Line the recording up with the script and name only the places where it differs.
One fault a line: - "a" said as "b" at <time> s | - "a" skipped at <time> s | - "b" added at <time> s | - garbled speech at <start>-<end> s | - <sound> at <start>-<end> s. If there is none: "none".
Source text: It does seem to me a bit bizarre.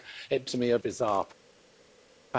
- "does seem" skipped at 0.5 s
- "bit" skipped at 0.8 s